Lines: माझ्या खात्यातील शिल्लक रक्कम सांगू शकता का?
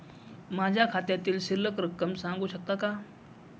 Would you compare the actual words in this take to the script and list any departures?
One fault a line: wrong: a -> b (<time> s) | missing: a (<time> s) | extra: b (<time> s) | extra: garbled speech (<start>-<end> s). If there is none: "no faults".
no faults